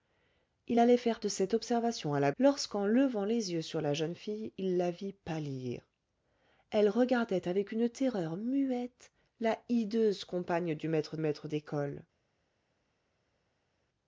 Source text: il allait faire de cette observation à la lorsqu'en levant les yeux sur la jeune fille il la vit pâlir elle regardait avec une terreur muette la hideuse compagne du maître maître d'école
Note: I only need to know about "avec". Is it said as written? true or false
true